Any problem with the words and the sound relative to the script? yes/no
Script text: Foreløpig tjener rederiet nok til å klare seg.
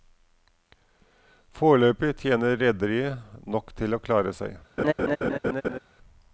yes